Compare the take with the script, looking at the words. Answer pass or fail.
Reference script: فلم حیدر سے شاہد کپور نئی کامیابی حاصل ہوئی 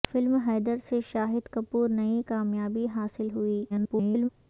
fail